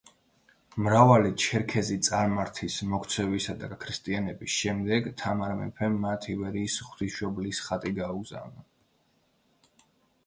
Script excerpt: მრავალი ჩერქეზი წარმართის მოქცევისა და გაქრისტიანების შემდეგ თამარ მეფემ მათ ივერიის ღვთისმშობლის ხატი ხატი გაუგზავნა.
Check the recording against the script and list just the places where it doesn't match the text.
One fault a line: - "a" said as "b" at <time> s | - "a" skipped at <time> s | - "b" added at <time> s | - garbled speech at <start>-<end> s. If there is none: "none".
- "ხატი" skipped at 8.0 s